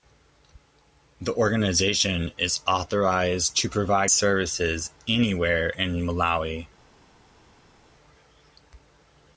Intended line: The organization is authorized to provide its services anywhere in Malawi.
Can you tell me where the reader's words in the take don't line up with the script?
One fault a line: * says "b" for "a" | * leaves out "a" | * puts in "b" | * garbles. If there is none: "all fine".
* leaves out "its"